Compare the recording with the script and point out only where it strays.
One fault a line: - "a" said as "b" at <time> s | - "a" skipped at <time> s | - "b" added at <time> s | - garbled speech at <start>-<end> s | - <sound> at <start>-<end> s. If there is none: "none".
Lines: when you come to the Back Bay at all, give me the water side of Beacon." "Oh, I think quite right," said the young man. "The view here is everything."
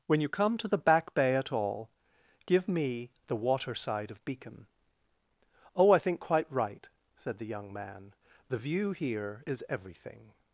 none